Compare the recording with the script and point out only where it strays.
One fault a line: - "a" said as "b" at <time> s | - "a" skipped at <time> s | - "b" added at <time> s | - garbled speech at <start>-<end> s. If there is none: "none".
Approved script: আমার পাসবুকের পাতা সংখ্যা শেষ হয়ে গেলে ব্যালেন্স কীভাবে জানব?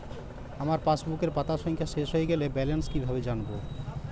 none